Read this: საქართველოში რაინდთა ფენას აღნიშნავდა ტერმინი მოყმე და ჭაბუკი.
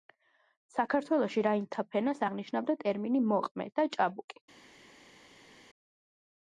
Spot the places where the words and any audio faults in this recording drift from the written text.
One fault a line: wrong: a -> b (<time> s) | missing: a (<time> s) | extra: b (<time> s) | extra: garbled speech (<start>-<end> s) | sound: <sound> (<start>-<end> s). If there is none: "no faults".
no faults